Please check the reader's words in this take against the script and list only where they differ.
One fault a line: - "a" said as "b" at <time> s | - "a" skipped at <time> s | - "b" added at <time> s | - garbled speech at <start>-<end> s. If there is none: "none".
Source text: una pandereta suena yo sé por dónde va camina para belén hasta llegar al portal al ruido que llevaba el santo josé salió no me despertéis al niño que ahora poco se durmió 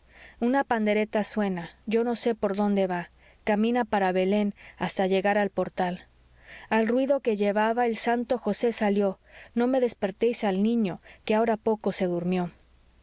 - "no" added at 2.0 s